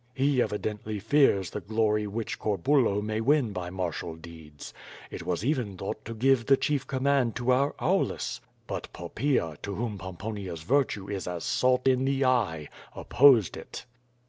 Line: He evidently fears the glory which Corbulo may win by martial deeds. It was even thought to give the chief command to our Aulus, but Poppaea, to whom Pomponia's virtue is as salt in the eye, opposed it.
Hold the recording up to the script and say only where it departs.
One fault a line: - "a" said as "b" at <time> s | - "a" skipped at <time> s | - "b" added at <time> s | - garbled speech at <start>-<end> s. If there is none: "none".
none